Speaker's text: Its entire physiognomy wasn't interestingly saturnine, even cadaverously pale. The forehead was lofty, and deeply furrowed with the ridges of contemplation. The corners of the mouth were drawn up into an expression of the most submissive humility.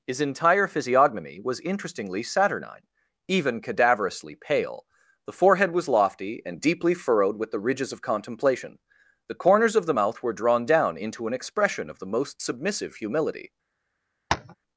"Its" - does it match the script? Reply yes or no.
no